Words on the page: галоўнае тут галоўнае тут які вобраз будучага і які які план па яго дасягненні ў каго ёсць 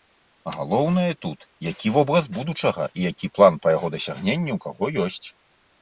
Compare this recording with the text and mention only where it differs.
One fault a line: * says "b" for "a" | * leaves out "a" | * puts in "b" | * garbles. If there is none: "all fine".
* leaves out "галоўнае тут"
* leaves out "які"